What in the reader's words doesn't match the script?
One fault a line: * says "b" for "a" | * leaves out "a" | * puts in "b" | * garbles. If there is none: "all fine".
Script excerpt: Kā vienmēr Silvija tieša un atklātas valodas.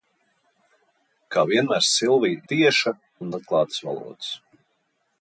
all fine